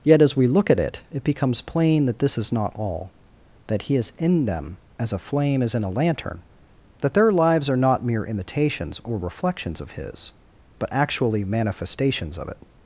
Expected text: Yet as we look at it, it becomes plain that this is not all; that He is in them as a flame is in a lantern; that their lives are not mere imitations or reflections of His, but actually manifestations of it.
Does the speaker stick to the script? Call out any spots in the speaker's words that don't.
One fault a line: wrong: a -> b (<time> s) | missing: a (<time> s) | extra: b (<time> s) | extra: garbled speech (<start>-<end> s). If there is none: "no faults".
no faults